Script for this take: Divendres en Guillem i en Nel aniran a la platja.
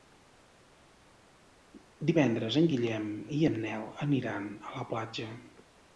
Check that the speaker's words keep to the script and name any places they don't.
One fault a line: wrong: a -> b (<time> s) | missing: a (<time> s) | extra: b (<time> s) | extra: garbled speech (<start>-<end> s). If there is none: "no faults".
no faults